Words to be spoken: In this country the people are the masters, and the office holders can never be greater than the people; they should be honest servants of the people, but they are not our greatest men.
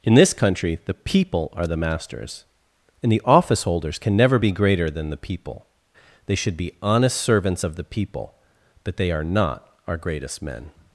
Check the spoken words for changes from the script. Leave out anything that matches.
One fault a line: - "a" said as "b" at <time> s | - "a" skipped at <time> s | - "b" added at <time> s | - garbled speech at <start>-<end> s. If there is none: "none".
none